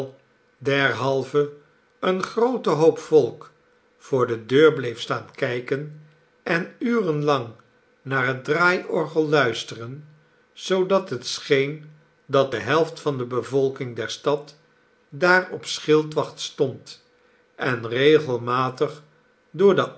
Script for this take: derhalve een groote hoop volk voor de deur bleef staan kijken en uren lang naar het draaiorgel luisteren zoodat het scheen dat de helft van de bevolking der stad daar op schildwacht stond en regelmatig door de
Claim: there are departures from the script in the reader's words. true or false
false